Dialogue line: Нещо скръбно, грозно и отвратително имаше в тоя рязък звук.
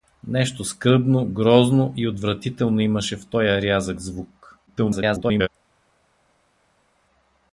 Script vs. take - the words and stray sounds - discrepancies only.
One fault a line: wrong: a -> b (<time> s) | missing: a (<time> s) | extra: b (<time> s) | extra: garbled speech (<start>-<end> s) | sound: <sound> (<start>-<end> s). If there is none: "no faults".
extra: garbled speech (4.7-5.5 s)